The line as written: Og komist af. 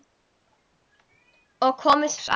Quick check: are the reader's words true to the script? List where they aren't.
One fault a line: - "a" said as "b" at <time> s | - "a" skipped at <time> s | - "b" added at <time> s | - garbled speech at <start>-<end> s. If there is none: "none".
none